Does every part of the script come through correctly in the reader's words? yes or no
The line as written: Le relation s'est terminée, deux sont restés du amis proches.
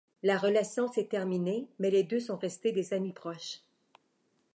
no